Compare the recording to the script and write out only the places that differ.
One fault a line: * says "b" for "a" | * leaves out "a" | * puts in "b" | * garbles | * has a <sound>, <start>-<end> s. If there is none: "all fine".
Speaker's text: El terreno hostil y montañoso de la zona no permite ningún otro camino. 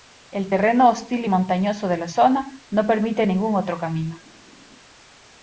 all fine